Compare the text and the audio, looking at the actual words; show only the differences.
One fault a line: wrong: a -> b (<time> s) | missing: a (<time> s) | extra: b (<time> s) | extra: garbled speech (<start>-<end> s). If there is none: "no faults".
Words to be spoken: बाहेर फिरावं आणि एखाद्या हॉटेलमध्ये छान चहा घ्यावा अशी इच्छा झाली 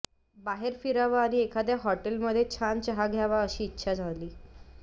no faults